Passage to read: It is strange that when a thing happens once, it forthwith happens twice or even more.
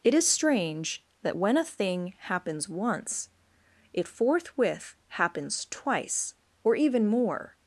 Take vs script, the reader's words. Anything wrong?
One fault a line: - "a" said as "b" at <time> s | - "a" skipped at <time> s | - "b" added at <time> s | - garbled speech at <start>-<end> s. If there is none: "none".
none